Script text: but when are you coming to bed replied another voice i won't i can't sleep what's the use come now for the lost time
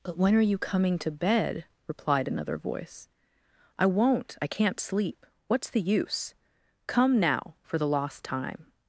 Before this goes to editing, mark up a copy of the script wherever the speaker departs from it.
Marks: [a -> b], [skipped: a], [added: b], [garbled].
but when are you coming to bed replied another voice i won't i can't sleep what's the use come now for the lost time